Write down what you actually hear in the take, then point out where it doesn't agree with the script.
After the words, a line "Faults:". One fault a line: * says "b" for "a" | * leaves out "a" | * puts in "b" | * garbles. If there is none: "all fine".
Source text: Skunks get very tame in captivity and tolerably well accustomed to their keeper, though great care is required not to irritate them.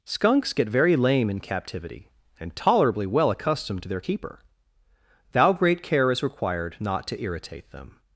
Skunks get very lame in captivity and tolerably well accustomed to their keeper, thou great care is required not to irritate them.
Faults:
* says "lame" for "tame"
* says "thou" for "though"